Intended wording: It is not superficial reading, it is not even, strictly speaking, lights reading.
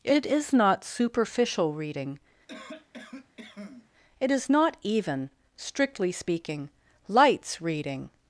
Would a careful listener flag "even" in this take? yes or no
no